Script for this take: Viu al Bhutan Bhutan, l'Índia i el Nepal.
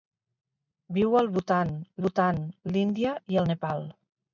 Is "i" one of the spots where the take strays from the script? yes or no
no